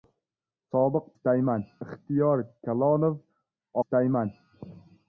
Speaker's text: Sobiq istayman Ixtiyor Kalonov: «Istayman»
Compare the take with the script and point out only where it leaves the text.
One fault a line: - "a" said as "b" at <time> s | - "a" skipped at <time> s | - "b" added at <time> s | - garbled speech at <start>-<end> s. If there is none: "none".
none